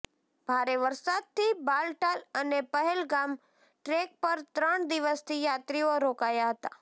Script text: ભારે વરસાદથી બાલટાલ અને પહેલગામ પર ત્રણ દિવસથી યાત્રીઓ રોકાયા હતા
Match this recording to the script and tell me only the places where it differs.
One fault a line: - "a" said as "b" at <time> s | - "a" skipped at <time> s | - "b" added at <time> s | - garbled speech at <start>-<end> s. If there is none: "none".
- "ટ્રેક" added at 3.4 s